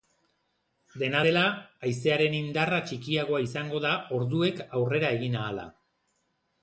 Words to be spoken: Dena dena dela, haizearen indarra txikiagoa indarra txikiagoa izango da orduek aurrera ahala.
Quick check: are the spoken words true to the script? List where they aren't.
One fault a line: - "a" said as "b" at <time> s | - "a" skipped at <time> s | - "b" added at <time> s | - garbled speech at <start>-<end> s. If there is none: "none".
- "dena" skipped at 1.2 s
- "indarra txikiagoa" skipped at 3.4 s
- "egin" added at 5.2 s